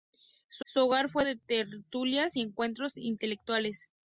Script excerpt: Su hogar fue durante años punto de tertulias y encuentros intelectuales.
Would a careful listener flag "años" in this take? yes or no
yes